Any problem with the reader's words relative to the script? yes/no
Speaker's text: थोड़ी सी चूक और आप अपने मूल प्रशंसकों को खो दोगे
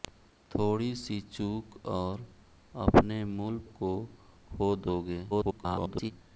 yes